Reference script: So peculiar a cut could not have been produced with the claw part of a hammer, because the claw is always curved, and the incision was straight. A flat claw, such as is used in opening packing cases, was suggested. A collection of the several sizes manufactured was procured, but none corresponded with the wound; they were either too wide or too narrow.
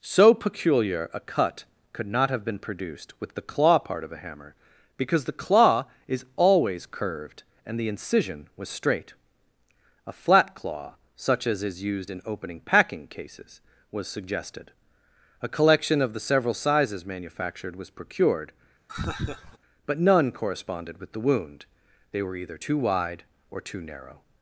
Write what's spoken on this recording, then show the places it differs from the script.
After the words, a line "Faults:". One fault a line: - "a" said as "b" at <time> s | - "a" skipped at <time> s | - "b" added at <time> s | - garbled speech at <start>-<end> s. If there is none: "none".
So peculiar a cut could not have been produced with the claw part of a hammer, because the claw is always curved, and the incision was straight. A flat claw, such as is used in opening packing cases, was suggested. A collection of the several sizes manufactured was procured, but none corresponded with the wound; they were either too wide or too narrow.
Faults:
none